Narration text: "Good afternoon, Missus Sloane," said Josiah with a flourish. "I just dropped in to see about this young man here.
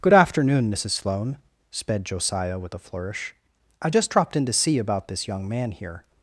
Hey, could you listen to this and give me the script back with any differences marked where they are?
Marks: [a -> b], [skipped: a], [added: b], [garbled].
"Good afternoon, Missus Sloane," [said -> sped] Josiah with a flourish. "I just dropped in to see about this young man here.